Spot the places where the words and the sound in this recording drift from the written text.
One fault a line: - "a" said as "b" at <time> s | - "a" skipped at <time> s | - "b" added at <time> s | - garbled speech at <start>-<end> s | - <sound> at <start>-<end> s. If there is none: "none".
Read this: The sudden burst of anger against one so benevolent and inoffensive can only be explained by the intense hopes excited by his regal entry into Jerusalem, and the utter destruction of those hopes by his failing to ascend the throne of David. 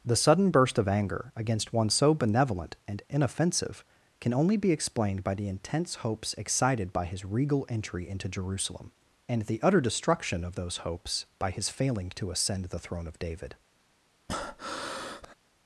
- breath at 14.3-15.4 s